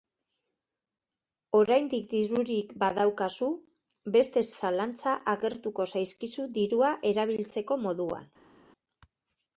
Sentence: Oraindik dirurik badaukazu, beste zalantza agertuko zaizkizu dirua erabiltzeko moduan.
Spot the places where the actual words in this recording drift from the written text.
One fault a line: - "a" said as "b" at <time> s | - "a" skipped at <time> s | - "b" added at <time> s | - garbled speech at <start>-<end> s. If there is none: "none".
none